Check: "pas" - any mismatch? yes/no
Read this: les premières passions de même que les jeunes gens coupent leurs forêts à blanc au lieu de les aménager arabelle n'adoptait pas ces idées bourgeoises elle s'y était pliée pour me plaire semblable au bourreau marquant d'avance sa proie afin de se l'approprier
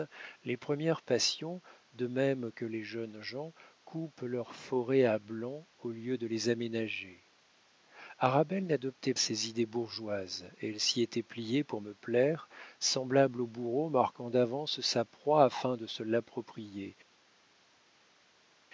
yes